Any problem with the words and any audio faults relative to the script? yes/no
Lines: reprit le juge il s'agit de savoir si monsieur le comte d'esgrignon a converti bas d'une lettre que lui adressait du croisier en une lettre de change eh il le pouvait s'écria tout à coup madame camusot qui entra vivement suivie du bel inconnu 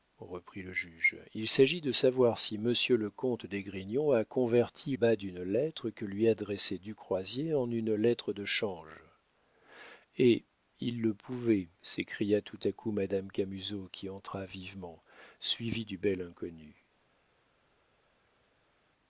no